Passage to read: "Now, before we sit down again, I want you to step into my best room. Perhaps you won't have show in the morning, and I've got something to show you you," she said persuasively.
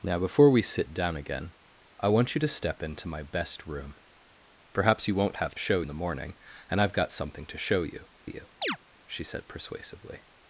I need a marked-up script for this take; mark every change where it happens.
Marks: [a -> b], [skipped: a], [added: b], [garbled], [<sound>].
"Now, before we sit down again, I want you to step into my best room. Perhaps you won't have show in the morning, and I've got something to show you you," [chirp] she said persuasively.